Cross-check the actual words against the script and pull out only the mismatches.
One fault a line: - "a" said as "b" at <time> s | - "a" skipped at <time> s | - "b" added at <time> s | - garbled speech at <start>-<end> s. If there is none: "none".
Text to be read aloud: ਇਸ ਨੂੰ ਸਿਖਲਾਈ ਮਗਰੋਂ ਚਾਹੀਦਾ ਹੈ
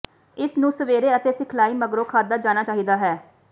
- "ਸਵੇਰੇ ਅਤੇ" added at 0.7 s
- "ਖਾਧਾ ਜਾਣਾ" added at 2.0 s